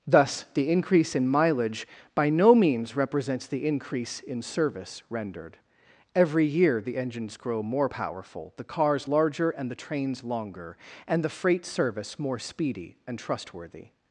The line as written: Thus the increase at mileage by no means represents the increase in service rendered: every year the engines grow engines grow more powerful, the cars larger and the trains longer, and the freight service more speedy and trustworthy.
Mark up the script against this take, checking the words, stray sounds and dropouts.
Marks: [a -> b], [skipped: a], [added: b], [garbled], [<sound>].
Thus the increase [at -> in] mileage by no means represents the increase in service rendered: every year the engines grow [skipped: engines grow] more powerful, the cars larger and the trains longer, and the freight service more speedy and trustworthy.